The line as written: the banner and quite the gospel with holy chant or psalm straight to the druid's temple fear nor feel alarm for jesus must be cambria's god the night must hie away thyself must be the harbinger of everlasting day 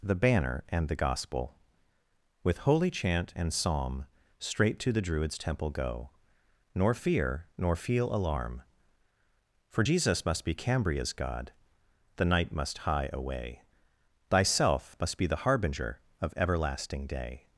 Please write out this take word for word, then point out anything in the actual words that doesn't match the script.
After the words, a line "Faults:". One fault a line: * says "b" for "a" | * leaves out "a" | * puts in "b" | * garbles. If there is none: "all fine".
the banner and the gospel with holy chant and psalm straight to the druid's temple go nor fear nor feel alarm for jesus must be cambria's god the night must hie away thyself must be the harbinger of everlasting day
Faults:
* leaves out "quite"
* says "and" for "or"
* puts in "go nor"